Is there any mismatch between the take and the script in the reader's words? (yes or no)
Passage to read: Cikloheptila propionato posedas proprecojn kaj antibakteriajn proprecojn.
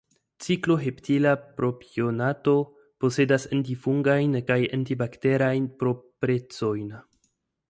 yes